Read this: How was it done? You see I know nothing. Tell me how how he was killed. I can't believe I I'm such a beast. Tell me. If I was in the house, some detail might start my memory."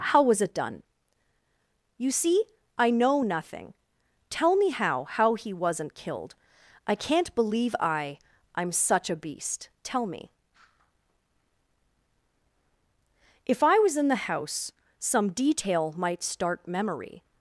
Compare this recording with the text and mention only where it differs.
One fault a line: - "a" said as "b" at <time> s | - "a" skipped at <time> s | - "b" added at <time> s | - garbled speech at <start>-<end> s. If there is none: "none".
- "was" said as "wasn't" at 5.5 s
- "my" skipped at 16.7 s